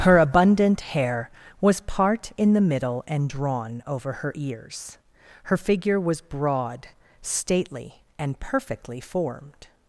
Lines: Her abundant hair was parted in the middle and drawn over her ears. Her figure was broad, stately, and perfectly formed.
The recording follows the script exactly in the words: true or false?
false